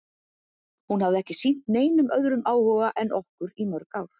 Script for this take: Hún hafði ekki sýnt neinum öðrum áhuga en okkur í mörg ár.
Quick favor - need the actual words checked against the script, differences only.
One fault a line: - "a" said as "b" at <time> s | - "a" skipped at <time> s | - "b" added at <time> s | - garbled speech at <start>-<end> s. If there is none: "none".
none